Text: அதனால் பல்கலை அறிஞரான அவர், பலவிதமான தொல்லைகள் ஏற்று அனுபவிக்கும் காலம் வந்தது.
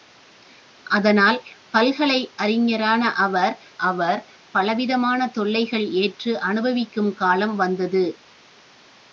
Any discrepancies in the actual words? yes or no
yes